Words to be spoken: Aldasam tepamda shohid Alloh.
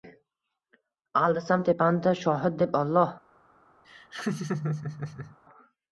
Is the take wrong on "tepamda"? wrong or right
right